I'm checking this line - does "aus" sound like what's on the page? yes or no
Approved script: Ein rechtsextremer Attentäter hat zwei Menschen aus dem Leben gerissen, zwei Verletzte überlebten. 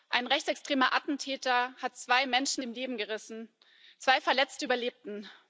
no